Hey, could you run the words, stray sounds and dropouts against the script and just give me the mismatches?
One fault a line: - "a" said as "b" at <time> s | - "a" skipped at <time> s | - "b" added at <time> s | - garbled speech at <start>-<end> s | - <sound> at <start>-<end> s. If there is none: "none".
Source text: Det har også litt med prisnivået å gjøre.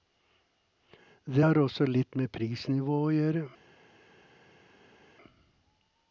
none